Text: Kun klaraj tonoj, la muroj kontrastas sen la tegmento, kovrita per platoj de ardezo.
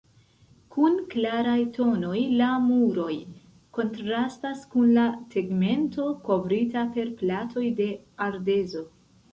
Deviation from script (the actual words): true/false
true